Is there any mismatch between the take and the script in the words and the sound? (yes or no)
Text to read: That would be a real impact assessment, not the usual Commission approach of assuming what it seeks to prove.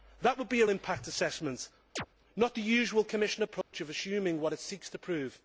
yes